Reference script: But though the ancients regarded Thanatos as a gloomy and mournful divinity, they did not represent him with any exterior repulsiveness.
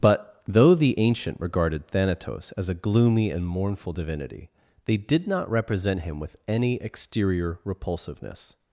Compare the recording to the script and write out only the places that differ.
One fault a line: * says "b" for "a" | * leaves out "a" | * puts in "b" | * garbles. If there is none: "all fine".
* says "ancient" for "ancients"